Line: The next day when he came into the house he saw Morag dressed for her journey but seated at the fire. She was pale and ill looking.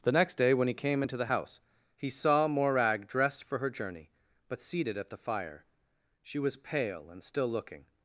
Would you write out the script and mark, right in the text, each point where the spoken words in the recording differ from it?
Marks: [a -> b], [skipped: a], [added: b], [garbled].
The next day when he came into the house he saw Morag dressed for her journey but seated at the fire. She was pale and [ill -> still] looking.